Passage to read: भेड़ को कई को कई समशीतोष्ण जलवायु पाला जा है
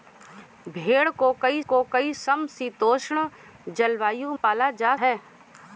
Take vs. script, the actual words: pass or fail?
pass